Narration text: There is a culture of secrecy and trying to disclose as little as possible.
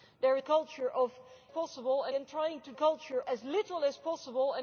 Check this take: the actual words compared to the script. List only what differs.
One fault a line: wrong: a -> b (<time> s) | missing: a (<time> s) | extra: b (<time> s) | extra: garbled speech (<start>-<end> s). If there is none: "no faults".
missing: is (0.4 s)
wrong: secrecy -> possible (1.5 s)
wrong: disclose -> culture (2.7 s)